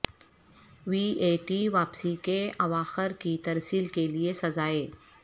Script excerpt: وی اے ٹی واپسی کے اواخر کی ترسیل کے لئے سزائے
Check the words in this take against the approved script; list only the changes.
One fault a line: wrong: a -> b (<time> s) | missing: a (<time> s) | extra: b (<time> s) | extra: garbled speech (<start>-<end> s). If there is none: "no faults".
no faults